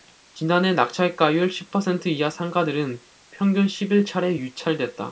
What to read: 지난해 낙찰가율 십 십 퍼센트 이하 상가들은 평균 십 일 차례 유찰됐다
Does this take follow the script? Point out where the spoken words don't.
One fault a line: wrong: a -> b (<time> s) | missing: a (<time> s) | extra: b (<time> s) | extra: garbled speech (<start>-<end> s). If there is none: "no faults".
missing: 십 (1.7 s)